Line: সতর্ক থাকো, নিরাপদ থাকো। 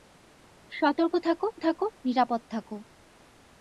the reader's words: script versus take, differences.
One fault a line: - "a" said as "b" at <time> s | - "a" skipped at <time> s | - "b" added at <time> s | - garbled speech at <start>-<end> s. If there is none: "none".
- "থাকো" added at 1.6 s